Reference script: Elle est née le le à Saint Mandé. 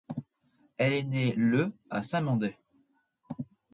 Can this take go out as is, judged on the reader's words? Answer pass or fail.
fail